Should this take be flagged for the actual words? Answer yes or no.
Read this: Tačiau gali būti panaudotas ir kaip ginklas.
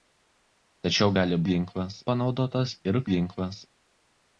yes